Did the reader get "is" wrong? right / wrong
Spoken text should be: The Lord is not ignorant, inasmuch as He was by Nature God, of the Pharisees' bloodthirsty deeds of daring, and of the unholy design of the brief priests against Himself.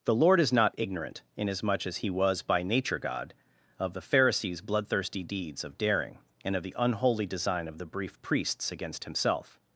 right